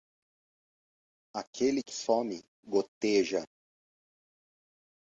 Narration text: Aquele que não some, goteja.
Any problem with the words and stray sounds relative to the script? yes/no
yes